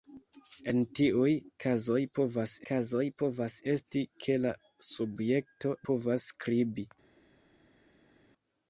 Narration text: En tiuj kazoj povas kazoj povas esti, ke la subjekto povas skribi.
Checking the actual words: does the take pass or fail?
pass